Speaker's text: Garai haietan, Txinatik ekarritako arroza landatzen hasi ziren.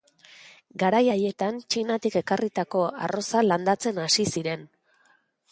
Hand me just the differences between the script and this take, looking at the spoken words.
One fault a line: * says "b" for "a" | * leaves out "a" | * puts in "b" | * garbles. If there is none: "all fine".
all fine